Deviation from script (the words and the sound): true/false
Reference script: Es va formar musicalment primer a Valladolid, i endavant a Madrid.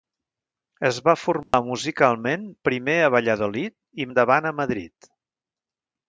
true